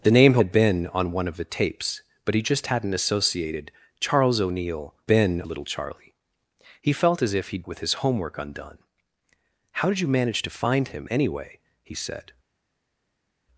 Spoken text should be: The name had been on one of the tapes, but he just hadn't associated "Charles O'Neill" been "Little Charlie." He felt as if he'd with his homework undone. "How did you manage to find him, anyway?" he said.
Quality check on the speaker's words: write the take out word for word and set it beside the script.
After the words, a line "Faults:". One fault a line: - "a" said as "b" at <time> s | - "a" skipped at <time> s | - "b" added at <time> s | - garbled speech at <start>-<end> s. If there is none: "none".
The name had been on one of the tapes, but he just hadn't associated "Charles O'Neill" been "Little Charlie." He felt as if he'd with his homework undone. "How did you manage to find him, anyway?" he said.
Faults:
none